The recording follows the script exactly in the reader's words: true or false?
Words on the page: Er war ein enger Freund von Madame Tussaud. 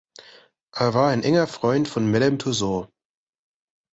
true